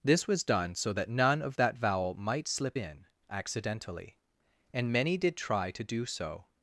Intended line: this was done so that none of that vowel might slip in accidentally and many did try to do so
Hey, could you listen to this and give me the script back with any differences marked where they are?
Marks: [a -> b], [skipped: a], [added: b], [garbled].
this was done so that none of that vowel might slip in accidentally and many did try to do so